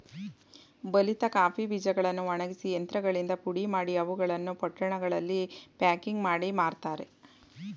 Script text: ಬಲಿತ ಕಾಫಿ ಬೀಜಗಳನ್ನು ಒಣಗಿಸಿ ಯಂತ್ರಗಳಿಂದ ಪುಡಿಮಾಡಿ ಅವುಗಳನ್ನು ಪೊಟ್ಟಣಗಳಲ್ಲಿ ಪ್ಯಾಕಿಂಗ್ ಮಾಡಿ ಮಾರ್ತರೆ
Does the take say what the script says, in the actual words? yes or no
yes